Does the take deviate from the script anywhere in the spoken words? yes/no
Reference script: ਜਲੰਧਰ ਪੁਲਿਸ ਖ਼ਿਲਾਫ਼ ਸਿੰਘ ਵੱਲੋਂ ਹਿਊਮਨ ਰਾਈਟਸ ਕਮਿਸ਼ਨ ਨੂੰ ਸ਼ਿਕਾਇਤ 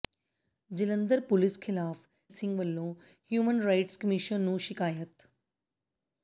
no